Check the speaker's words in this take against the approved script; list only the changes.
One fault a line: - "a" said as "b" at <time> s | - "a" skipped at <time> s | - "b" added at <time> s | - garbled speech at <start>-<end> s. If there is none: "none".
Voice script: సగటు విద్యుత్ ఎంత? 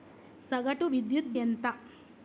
none